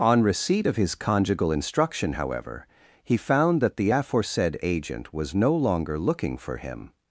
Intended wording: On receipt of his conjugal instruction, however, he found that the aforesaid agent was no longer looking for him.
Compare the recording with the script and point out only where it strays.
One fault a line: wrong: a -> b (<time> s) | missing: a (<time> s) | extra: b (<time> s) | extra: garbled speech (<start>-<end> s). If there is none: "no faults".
no faults